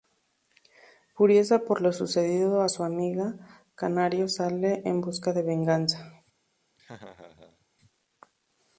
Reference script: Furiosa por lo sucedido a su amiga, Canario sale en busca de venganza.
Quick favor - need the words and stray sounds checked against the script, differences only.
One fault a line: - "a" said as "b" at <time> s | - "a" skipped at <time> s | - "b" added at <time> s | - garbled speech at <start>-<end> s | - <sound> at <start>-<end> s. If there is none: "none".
- laugh at 6.8-7.7 s